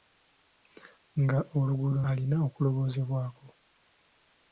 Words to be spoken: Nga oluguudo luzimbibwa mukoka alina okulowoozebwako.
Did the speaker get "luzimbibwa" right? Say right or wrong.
wrong